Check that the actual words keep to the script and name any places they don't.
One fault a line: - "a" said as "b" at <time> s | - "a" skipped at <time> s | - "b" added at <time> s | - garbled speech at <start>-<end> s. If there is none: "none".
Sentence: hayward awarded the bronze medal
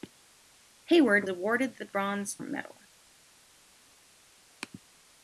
none